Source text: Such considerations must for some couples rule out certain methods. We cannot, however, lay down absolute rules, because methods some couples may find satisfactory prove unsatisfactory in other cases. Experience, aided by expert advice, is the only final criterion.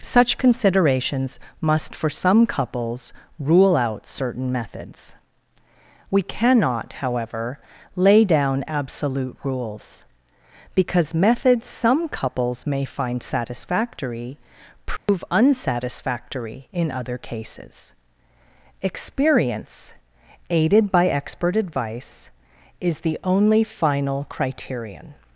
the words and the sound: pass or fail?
fail